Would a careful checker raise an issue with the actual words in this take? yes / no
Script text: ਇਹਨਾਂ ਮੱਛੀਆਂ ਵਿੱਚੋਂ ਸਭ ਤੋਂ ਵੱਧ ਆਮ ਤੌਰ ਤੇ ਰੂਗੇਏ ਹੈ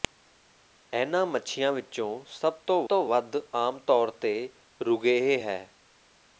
yes